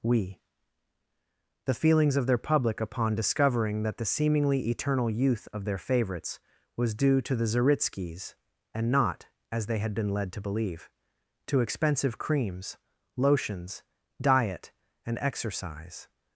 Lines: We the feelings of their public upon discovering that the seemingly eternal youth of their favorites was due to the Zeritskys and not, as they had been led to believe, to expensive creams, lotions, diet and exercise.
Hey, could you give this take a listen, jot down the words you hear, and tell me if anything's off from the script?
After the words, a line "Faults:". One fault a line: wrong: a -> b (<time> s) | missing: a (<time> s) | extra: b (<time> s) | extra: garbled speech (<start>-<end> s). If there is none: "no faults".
We the feelings of their public upon discovering that the seemingly eternal youth of their favorites was due to the Zeritskys and not, as they had been led to believe, to expensive creams, lotions, diet and exercise.
Faults:
no faults